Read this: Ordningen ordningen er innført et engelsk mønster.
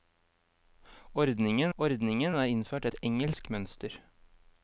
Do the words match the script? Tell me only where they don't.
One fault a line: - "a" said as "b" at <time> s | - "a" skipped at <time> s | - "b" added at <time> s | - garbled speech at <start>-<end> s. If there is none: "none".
none